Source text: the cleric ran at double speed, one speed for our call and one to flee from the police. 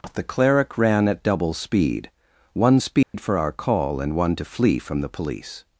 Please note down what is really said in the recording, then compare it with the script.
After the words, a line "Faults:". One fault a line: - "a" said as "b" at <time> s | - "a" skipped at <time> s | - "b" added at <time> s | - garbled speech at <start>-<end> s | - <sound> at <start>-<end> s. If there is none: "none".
the cleric ran at double speed, one speed for our call and one to flee from the police.
Faults:
- dropout at 3.0-3.1 s